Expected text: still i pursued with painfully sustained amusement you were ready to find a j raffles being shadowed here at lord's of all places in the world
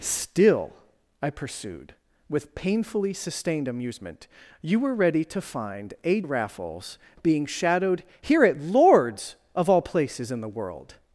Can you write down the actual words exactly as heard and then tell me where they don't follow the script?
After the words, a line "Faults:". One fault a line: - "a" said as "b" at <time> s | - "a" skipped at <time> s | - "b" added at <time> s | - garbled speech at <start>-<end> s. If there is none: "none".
still i pursued with painfully sustained amusement you were ready to find a raffles being shadowed here at lord's of all places in the world
Faults:
- "j" skipped at 6.2 s